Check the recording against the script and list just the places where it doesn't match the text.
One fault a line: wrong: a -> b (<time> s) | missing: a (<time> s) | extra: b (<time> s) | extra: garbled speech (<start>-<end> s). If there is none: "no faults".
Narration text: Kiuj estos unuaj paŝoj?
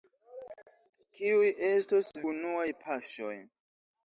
no faults